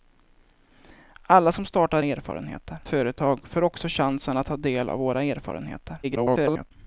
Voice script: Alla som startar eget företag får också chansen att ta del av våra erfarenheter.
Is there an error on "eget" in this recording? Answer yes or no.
yes